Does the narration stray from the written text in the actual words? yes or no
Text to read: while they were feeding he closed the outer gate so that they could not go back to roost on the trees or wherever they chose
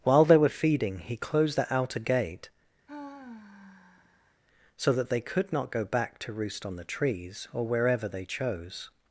no